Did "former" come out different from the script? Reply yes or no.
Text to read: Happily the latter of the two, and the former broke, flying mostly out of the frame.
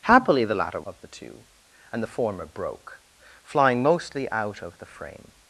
no